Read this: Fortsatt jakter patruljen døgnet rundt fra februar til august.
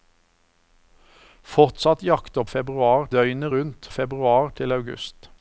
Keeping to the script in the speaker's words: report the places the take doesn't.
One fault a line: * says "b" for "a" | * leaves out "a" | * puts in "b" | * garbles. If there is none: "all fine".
* says "februar" for "patruljen"
* leaves out "fra"